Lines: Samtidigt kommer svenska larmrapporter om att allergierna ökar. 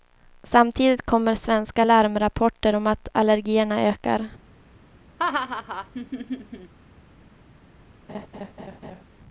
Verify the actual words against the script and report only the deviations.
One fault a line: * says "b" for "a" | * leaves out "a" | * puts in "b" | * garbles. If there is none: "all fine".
all fine